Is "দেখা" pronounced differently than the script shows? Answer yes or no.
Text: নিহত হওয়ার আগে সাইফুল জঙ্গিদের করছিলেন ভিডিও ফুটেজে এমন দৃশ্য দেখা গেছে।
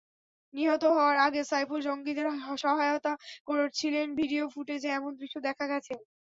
no